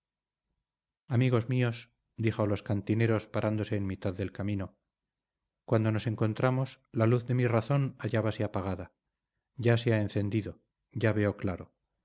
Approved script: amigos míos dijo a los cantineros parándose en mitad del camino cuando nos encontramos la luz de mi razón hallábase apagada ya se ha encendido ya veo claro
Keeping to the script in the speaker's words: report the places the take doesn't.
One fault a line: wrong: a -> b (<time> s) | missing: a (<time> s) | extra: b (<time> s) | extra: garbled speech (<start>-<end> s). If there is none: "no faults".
no faults